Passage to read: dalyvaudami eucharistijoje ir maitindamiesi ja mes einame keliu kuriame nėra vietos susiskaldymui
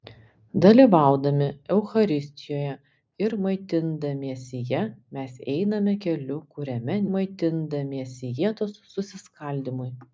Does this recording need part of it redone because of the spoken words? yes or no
yes